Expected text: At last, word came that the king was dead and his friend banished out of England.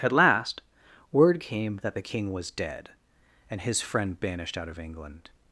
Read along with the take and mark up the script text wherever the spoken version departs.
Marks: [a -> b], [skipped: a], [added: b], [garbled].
At last, word came that the king was dead and his friend banished out of England.